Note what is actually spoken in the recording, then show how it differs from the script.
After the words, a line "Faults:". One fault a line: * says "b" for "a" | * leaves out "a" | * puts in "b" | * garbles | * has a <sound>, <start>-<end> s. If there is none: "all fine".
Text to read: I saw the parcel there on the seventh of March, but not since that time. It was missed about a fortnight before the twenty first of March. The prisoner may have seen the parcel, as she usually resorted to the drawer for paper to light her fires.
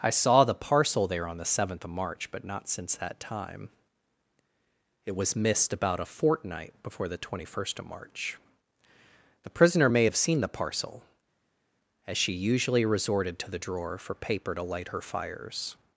I saw the parcel there on the seventh of March, but not since that time. It was missed about a fortnight before the twenty first of March. The prisoner may have seen the parcel, as she usually resorted to the drawer for paper to light her fires.
Faults:
all fine